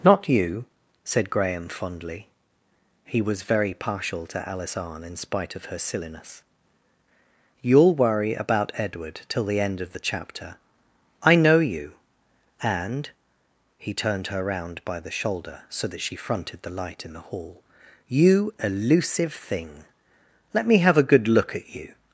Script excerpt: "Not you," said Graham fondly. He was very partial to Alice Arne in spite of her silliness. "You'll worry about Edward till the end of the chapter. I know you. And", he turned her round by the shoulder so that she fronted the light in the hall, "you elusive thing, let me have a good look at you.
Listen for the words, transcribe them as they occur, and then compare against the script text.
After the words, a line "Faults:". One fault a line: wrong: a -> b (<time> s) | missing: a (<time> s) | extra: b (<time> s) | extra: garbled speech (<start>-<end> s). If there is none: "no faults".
"Not you," said Graham fondly. He was very partial to Alice Arne in spite of her silliness. "You'll worry about Edward till the end of the chapter. I know you. And", he turned her round by the shoulder so that she fronted the light in the hall, "you elusive thing, let me have a good look at you.
Faults:
no faults